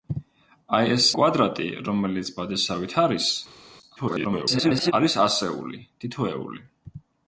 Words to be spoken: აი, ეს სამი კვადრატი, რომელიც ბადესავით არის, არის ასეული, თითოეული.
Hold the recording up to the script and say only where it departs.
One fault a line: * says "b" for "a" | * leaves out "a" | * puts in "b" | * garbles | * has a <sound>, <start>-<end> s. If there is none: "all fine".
* leaves out "სამი"
* garbles